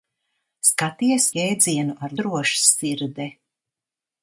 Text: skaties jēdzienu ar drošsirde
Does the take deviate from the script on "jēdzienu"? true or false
false